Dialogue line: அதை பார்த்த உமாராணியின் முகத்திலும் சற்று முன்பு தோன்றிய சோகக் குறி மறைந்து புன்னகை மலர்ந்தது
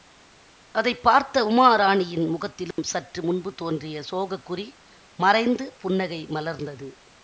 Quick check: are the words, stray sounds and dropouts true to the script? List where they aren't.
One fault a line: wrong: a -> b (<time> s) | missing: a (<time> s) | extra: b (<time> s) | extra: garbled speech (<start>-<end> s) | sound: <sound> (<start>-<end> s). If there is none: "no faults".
sound: dropout (2.7-2.8 s)